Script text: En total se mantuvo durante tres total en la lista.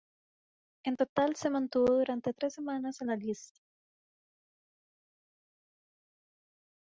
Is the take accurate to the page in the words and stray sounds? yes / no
no